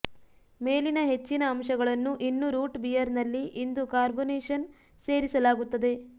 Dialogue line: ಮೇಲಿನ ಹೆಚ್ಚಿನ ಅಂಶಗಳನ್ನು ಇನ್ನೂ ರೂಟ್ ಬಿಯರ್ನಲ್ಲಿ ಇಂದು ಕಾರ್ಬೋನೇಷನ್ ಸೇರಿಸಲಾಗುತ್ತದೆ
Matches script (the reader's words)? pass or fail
pass